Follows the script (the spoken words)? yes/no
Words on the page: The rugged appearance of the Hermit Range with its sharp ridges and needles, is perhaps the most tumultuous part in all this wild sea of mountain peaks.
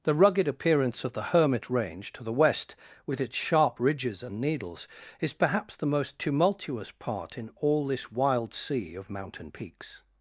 no